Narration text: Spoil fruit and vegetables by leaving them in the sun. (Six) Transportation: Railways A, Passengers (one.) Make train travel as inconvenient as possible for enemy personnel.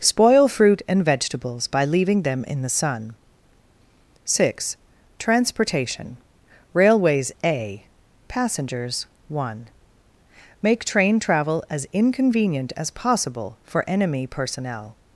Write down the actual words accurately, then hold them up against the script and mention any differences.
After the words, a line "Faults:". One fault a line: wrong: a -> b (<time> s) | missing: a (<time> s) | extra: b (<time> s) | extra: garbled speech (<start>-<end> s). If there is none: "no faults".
Spoil fruit and vegetables by leaving them in the sun. (Six) Transportation: Railways A, Passengers (one.) Make train travel as inconvenient as possible for enemy personnel.
Faults:
no faults